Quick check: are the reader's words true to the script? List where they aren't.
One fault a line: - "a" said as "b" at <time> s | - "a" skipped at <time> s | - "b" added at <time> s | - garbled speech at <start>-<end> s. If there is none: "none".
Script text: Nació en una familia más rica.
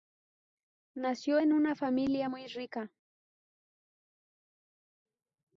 - "más" said as "muy" at 2.3 s